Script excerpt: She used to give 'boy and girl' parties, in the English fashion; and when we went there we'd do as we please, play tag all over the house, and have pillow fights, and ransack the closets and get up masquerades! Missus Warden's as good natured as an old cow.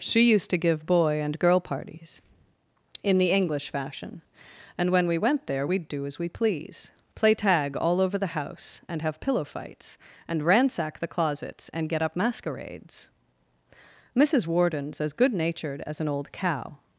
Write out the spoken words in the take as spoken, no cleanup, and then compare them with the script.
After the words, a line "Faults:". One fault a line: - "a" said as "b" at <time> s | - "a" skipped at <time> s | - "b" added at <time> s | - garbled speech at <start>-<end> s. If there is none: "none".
She used to give 'boy and girl' parties, in the English fashion; and when we went there we'd do as we please, play tag all over the house, and have pillow fights, and ransack the closets and get up masquerades! Missus Warden's as good natured as an old cow.
Faults:
none